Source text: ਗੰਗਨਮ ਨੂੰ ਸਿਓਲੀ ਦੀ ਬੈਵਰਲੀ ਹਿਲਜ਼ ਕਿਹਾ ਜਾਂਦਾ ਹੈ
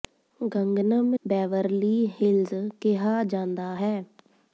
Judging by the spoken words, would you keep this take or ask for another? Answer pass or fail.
fail